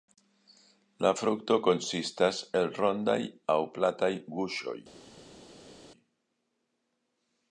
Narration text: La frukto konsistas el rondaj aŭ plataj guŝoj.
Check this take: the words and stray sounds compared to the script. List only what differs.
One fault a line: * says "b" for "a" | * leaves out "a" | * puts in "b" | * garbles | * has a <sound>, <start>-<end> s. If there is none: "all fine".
all fine